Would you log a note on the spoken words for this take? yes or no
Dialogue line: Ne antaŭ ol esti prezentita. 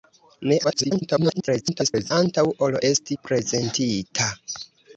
yes